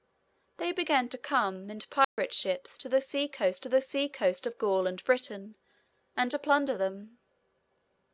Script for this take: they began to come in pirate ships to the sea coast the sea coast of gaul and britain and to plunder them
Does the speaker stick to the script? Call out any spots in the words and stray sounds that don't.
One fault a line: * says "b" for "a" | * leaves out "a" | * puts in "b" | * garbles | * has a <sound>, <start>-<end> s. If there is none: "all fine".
* has a dropout, 2.0-2.2 s